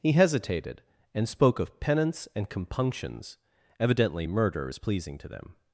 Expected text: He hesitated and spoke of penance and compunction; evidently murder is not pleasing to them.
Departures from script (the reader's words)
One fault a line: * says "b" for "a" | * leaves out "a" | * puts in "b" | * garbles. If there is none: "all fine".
* says "compunctions" for "compunction"
* leaves out "not"